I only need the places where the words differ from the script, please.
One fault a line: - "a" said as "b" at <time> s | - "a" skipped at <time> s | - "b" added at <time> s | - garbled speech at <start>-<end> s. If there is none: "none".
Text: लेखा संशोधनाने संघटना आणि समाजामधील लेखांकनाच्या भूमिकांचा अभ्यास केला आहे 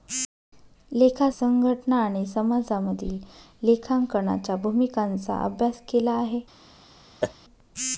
- "संशोधनाने" skipped at 1.3 s